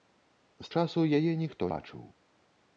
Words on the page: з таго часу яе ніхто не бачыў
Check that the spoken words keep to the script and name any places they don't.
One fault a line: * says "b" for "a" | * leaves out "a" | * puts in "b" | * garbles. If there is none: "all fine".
* leaves out "таго"
* leaves out "не"